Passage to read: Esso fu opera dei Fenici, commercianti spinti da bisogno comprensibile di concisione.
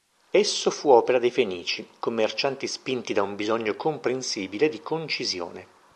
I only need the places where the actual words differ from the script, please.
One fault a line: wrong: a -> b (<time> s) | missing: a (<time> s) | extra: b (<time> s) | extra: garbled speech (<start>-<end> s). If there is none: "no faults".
extra: un (3.2 s)